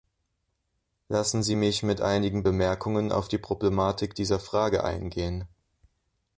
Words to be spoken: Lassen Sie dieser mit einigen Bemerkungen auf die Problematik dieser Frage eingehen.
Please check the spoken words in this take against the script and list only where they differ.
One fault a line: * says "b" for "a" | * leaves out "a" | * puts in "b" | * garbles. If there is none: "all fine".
* says "mich" for "dieser"